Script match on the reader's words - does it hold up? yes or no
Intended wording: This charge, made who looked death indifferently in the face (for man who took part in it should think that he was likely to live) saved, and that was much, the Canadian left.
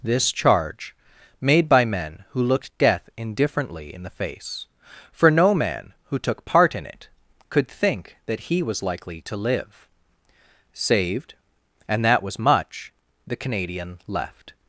no